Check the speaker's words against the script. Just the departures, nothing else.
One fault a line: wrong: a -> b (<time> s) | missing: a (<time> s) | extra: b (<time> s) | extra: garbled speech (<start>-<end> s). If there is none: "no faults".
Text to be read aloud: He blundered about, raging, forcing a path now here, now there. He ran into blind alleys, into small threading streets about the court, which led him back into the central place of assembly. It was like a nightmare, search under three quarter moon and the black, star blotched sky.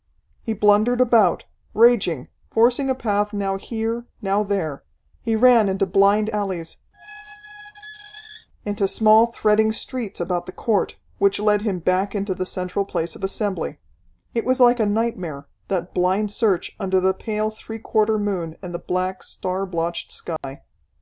extra: that blind (15.7 s)
extra: the pale (17.0 s)